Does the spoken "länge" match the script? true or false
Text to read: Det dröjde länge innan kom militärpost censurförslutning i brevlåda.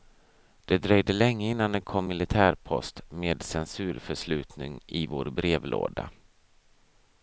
true